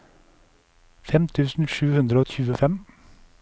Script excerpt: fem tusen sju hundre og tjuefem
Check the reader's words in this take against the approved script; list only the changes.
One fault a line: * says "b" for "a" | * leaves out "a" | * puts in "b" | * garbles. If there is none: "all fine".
all fine